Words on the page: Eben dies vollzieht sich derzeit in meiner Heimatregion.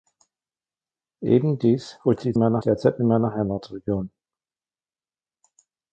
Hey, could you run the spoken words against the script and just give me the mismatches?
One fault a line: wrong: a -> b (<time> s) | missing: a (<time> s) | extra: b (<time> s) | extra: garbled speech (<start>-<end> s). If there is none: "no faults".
wrong: sich -> meiner (2.4 s)